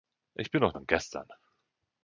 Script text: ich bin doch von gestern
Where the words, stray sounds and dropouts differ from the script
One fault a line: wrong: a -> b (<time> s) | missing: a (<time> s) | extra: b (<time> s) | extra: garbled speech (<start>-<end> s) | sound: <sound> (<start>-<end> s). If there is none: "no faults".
no faults